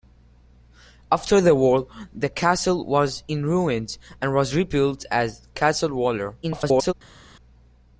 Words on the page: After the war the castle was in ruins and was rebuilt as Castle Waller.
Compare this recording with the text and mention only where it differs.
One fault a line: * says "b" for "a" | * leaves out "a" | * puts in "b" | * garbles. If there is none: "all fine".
* garbles